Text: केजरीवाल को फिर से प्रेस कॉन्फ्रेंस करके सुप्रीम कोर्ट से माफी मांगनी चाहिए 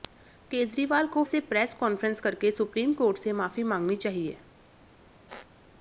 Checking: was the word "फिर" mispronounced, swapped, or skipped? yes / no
yes